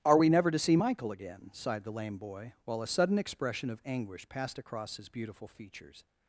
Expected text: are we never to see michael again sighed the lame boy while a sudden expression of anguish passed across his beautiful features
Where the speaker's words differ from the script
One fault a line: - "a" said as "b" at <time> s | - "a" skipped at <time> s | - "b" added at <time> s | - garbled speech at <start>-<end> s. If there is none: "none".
none